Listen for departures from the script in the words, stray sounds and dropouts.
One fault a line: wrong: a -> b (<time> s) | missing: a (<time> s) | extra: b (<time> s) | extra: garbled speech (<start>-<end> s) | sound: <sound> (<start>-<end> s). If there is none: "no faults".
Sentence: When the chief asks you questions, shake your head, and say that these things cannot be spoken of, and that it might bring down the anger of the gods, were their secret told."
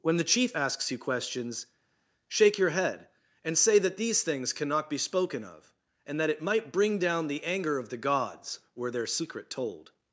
no faults